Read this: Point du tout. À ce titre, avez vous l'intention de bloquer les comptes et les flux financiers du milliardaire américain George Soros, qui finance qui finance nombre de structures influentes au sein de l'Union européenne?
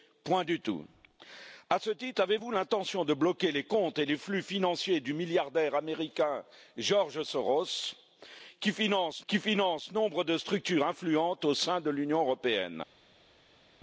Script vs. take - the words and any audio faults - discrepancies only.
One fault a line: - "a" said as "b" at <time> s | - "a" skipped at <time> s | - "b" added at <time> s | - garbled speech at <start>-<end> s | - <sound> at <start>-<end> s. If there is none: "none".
none